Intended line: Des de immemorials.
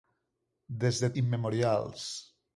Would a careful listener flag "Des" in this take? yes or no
no